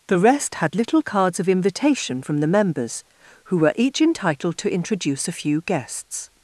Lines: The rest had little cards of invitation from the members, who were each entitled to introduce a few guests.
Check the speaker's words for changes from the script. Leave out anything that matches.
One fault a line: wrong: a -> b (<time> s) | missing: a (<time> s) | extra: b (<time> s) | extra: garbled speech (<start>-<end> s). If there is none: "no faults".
no faults